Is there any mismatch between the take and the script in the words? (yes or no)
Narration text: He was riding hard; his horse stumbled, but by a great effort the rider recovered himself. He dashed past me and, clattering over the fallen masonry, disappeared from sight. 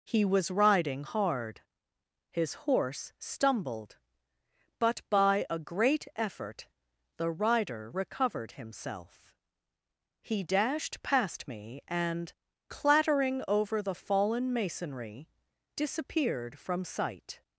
no